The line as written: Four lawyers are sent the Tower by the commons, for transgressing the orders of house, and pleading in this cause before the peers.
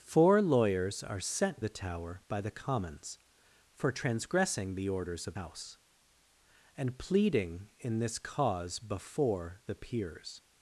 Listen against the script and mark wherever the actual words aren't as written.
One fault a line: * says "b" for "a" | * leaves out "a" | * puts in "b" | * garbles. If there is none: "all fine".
all fine